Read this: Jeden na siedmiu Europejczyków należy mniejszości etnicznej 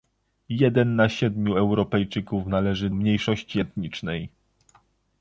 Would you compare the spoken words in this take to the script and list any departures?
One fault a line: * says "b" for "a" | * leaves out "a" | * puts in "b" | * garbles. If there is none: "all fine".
all fine